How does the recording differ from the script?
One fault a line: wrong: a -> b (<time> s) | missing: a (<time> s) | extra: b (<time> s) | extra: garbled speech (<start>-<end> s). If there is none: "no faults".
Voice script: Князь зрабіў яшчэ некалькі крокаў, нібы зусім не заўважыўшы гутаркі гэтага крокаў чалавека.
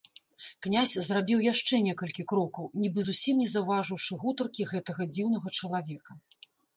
wrong: крокаў -> дзіўнага (5.1 s)